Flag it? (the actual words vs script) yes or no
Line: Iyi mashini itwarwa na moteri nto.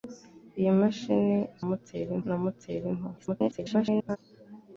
yes